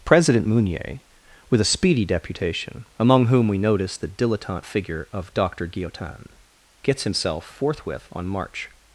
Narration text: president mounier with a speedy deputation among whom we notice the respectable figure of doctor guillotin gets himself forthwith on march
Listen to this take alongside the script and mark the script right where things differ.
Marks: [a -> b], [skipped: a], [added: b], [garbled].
president mounier with a speedy deputation among whom we notice the [respectable -> dilettante] figure of doctor guillotin gets himself forthwith on march